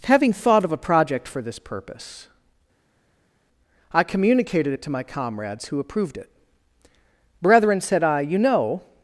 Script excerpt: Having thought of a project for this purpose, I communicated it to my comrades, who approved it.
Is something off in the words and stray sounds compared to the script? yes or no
yes